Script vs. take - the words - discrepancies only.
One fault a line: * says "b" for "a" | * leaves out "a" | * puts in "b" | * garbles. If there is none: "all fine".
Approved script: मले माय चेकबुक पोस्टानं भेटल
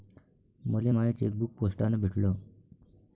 all fine